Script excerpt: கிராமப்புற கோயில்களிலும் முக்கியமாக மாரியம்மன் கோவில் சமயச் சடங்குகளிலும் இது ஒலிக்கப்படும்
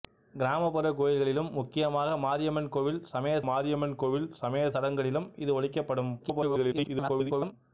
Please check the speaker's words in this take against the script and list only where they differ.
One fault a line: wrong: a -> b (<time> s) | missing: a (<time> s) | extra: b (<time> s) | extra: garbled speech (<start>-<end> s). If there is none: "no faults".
extra: மாரியம்மன் கோவில் சமயச் (3.4 s)
extra: garbled speech (6.2-7.5 s)